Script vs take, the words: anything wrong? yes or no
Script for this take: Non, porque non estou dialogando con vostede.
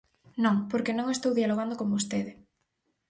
no